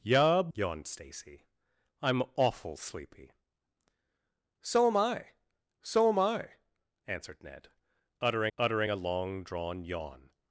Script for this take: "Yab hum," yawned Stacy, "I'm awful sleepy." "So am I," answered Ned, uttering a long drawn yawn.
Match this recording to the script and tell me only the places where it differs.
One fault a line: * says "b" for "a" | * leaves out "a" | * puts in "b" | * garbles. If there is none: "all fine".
* leaves out "hum"
* puts in "so am I"
* puts in "uttering"